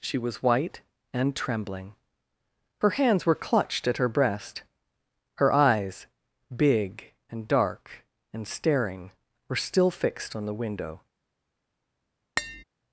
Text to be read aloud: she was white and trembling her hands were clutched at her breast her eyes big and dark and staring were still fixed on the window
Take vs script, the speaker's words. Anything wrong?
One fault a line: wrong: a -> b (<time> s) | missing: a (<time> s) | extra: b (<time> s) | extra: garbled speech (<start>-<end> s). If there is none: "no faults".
no faults